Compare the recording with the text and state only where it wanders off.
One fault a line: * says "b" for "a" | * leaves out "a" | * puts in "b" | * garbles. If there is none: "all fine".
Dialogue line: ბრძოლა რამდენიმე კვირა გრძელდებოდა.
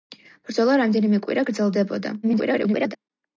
* garbles